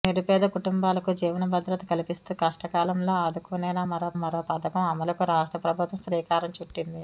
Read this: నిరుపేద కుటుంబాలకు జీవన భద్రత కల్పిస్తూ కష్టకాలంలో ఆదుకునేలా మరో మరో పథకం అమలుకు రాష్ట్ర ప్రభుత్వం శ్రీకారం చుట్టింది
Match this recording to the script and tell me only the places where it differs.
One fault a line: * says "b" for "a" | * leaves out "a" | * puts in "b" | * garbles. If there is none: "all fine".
all fine